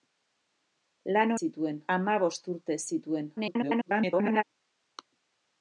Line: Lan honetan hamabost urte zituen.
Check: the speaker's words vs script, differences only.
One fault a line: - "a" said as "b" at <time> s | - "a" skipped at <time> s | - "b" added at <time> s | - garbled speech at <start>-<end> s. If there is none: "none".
- "honetan" said as "zituen" at 1.4 s
- garbled speech at 3.4-4.4 s